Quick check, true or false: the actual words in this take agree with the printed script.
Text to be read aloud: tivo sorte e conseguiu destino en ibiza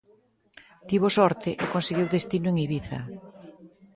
true